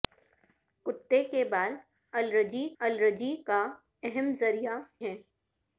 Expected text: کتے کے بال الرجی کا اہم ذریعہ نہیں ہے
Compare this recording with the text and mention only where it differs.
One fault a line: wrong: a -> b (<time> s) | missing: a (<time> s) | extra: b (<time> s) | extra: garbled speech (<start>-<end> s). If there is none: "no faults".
extra: الرجی (2.8 s)
missing: نہیں (4.8 s)